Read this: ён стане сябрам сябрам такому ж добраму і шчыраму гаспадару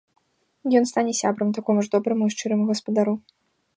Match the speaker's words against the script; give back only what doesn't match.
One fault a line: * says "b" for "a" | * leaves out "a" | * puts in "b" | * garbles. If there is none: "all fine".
* leaves out "сябрам"